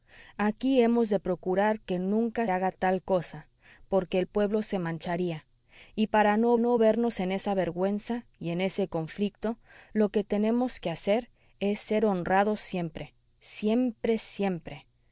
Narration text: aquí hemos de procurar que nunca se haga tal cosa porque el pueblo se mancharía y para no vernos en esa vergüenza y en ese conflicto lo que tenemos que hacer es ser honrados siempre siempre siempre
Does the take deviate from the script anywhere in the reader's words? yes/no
yes